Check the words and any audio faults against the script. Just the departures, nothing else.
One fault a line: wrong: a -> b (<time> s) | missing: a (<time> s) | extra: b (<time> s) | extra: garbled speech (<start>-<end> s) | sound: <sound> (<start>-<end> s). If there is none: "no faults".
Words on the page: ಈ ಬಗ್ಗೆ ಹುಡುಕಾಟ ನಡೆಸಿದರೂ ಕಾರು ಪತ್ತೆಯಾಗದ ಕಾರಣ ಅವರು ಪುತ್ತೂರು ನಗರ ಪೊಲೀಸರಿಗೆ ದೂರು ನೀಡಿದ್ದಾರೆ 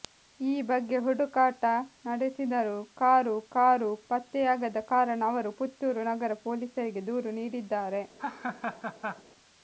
extra: ಕಾರು (3.5 s)
sound: laugh (8.2-9.2 s)